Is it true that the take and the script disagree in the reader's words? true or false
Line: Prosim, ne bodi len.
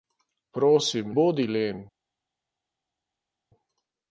true